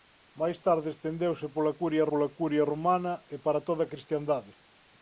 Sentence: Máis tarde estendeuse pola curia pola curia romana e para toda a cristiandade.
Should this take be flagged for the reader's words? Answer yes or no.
no